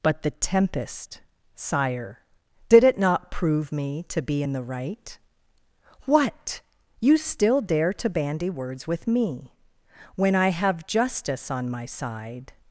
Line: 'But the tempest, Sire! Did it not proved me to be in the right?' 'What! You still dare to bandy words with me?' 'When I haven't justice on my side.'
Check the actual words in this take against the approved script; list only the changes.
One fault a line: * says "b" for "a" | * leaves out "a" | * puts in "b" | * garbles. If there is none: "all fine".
* says "prove" for "proved"
* says "have" for "haven't"